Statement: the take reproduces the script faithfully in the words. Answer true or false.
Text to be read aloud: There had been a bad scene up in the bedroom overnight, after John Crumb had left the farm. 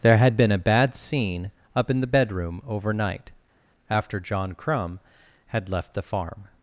true